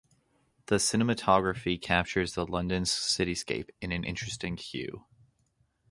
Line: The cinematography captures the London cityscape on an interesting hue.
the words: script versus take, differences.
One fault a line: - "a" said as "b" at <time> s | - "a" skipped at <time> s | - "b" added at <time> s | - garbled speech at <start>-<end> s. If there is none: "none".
- "on" said as "in" at 3.8 s